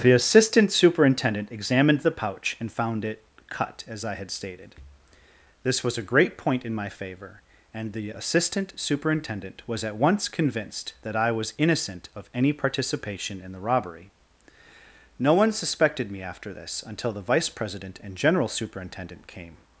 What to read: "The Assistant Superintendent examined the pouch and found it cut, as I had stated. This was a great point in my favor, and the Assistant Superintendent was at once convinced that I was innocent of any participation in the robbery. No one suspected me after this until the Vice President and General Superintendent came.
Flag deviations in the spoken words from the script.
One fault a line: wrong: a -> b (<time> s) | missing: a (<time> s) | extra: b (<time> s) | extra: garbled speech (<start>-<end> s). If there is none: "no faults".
no faults